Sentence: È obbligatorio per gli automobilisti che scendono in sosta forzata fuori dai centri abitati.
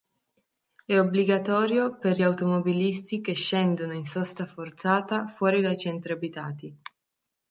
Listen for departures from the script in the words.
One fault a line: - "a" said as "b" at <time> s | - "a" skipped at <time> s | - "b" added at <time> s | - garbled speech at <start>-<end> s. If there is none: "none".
none